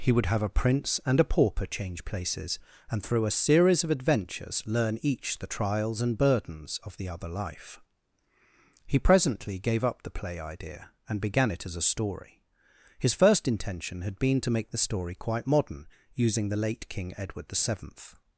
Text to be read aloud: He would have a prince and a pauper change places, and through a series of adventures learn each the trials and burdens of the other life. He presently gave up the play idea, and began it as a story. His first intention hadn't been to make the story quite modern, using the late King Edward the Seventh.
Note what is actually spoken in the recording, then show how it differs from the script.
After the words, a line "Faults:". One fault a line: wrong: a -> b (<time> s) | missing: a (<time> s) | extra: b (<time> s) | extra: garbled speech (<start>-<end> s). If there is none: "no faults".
He would have a prince and a pauper change places, and through a series of adventures learn each the trials and burdens of the other life. He presently gave up the play idea, and began it as a story. His first intention had been to make the story quite modern, using the late King Edward the Seventh.
Faults:
wrong: hadn't -> had (14.0 s)